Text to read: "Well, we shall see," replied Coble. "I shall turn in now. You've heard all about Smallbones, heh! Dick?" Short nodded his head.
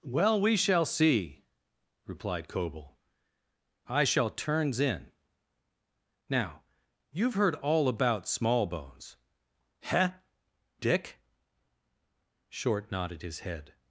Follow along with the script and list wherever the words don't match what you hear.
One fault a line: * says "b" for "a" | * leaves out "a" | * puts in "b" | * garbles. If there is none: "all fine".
* says "turns" for "turn"